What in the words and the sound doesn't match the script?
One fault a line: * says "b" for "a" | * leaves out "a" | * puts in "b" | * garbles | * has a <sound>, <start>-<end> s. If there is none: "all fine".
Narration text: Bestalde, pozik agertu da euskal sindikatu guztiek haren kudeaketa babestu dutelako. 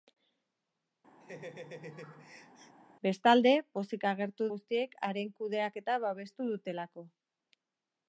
* has a laugh, 1.2-2.8 s
* leaves out "da euskal sindikatu"